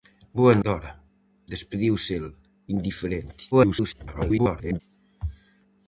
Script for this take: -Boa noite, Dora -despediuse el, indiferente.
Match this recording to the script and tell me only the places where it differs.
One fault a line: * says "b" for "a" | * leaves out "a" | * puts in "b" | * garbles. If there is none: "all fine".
* leaves out "noite"
* garbles